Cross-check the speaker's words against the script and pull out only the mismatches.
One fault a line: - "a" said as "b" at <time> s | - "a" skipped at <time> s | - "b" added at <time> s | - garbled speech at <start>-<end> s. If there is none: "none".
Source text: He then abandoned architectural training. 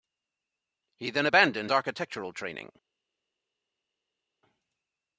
none